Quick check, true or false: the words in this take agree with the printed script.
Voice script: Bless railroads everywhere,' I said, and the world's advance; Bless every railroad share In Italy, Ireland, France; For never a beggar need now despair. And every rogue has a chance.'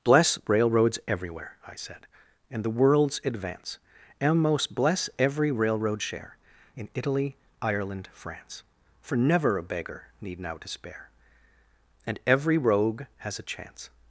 false